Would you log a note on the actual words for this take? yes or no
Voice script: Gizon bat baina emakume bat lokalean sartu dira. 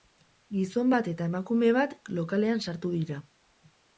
yes